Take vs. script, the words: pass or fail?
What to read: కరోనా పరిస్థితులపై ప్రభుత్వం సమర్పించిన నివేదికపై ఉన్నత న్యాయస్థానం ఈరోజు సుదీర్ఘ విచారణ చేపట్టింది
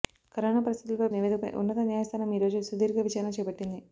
fail